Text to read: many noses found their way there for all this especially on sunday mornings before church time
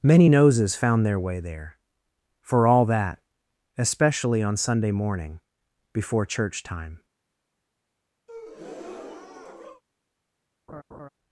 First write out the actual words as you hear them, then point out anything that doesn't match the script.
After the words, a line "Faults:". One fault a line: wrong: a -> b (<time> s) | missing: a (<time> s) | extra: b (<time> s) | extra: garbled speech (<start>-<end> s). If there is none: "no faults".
many noses found their way there for all that especially on sunday morning before church time
Faults:
wrong: this -> that (2.8 s)
wrong: mornings -> morning (4.9 s)